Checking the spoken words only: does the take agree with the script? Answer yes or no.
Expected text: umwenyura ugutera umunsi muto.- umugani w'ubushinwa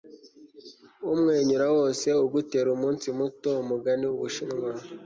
no